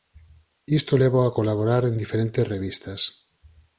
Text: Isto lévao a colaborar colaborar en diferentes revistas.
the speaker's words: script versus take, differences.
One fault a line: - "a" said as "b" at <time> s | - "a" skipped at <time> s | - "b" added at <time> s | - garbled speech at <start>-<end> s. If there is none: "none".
- "colaborar" skipped at 1.8 s